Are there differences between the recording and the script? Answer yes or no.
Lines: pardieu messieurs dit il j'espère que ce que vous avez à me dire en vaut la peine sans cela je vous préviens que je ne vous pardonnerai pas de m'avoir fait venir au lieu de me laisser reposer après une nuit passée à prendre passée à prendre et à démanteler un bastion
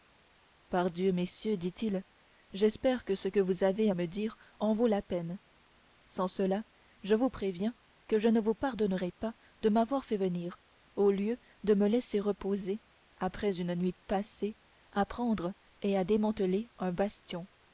yes